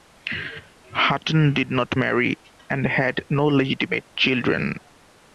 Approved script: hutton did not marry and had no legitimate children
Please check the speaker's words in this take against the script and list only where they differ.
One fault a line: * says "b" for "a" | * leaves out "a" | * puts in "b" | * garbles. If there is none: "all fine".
all fine